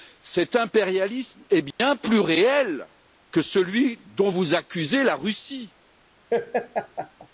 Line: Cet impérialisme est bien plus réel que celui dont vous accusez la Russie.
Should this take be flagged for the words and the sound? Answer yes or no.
yes